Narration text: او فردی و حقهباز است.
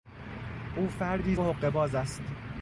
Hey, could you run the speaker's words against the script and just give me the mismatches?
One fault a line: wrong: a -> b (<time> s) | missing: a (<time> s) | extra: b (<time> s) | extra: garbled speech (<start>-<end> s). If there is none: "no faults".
no faults